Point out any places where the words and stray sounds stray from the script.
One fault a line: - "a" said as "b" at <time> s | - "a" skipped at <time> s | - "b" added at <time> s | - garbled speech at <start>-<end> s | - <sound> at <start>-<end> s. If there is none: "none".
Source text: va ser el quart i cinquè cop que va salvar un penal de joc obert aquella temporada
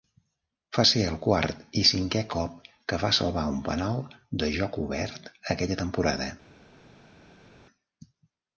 none